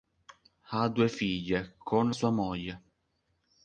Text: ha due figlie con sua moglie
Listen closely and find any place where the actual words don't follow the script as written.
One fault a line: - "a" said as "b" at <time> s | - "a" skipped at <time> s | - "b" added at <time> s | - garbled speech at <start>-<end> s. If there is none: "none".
none